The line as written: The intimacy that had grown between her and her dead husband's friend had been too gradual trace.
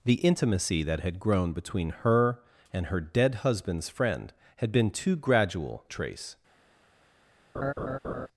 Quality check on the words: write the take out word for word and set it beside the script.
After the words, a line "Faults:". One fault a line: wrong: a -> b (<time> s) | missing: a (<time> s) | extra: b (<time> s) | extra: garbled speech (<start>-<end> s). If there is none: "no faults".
The intimacy that had grown between her and her dead husband's friend had been too gradual trace.
Faults:
no faults